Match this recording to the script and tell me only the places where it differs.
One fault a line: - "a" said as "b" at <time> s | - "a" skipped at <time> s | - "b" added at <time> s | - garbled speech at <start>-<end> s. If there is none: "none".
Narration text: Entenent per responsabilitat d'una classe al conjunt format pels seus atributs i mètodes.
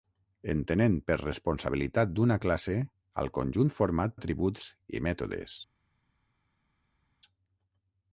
- "pels seus" skipped at 4.2 s